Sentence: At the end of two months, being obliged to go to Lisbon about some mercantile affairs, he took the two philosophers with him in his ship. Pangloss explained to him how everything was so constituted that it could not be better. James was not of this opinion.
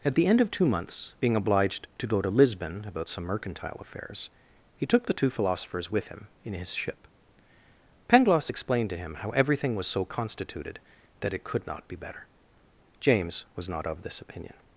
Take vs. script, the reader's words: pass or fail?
pass